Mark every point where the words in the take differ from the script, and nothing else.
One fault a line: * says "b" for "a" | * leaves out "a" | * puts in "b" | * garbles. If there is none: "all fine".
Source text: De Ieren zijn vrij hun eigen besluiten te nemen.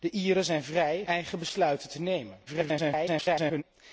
* leaves out "hun"
* garbles